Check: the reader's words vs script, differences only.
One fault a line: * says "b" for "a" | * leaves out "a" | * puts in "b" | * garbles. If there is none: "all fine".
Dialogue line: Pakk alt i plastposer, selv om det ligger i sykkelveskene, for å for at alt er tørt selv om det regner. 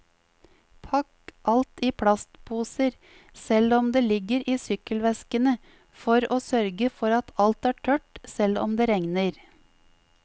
* puts in "sørge"